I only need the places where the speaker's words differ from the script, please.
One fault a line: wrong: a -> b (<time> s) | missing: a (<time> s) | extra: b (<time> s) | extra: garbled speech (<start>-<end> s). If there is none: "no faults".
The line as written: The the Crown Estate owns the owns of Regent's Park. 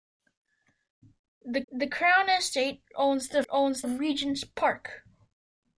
no faults